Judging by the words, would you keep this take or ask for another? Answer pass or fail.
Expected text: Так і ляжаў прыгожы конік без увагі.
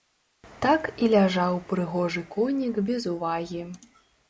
pass